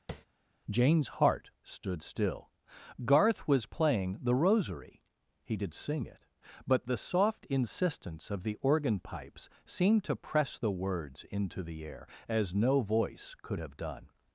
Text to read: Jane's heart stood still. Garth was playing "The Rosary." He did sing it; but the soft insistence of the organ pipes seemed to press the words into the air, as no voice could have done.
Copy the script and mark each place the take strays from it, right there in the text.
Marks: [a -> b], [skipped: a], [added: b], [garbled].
Jane's heart stood still. Garth was playing "The Rosary." He did sing it; but the soft insistence of the organ pipes seemed to press the words into the air, as no voice could have done.